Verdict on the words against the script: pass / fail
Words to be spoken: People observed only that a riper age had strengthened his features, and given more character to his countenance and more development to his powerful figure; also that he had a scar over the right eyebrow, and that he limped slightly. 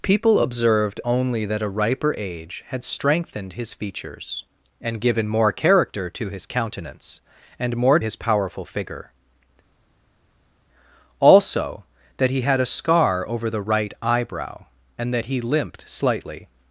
fail